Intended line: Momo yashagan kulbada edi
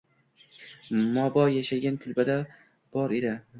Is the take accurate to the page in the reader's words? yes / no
no